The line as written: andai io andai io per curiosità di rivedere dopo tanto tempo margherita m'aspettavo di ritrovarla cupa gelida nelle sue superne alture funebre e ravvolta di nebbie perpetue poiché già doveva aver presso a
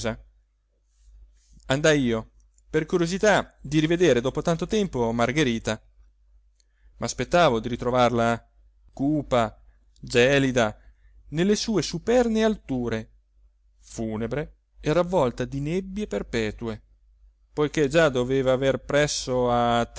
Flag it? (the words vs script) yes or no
yes